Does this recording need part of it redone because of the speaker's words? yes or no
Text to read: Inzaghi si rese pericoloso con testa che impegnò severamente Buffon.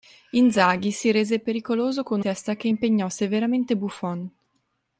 no